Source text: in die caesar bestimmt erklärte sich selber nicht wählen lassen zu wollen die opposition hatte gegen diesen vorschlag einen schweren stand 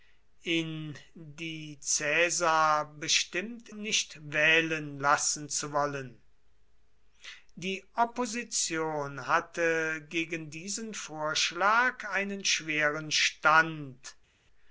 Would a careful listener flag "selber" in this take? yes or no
yes